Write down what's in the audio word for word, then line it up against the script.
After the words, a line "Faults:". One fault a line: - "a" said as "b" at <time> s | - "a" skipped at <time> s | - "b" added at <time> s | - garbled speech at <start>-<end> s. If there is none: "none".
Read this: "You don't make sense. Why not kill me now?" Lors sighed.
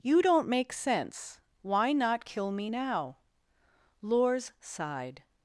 "You don't make sense. Why not kill me now?" Lors sighed.
Faults:
none